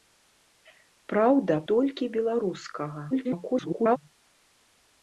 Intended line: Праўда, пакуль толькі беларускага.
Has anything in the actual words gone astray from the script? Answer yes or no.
yes